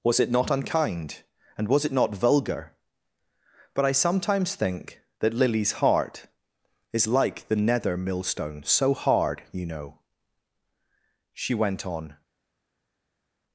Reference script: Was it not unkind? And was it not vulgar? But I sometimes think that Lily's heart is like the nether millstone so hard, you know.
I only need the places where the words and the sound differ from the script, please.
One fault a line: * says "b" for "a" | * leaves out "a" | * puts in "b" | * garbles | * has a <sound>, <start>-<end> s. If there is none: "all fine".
* puts in "She went on"